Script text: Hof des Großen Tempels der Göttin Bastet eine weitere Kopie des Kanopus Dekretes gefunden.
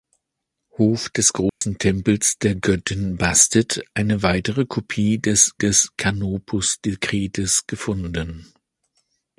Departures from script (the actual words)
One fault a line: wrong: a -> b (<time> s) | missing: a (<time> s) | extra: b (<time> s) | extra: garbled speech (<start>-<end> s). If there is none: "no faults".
extra: des (5.6 s)